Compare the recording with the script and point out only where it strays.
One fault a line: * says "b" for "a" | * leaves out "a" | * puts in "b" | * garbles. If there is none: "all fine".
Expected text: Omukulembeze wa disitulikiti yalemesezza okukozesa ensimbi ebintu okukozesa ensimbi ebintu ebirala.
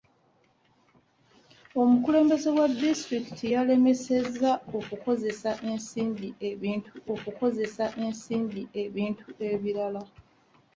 all fine